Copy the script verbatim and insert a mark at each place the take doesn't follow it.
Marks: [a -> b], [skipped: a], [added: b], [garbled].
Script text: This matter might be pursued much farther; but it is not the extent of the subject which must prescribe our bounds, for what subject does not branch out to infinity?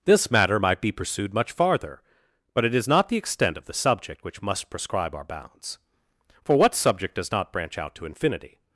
This matter might be pursued much farther; but it is not the extent of the subject which must prescribe our bounds, for what subject does not branch out to infinity?